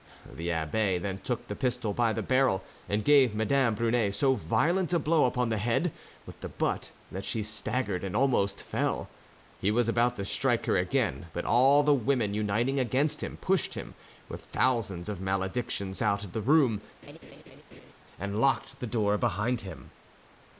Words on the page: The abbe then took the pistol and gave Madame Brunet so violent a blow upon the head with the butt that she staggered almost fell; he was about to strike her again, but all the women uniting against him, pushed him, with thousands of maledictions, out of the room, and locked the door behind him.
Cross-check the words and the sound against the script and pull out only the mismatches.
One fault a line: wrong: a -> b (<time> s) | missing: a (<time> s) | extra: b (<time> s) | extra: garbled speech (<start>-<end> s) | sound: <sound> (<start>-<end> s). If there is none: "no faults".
extra: by the barrel (1.9 s)
extra: and (8.0 s)
sound: laugh (17.0-17.9 s)